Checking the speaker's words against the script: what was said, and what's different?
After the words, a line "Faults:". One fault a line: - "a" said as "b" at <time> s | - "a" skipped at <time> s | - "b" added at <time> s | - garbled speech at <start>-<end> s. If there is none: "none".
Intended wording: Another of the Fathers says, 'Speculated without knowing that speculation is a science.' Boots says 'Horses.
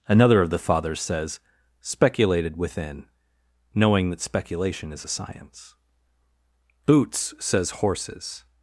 Another of the Fathers says, 'Speculated within knowing that speculation is a science.' Boots says 'Horses.
Faults:
- "without" said as "within" at 2.6 s